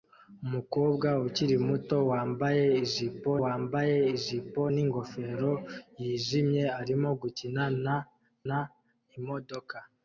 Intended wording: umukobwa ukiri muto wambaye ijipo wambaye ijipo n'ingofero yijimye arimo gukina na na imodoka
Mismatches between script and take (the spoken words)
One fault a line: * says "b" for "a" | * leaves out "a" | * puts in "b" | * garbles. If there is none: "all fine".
all fine